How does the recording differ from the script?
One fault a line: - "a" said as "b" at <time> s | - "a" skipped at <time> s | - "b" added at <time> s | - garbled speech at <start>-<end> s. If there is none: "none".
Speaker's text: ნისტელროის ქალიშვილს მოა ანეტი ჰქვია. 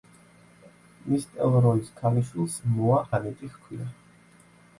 none